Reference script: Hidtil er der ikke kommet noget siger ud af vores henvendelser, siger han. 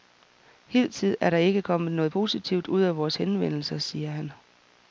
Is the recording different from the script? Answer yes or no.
yes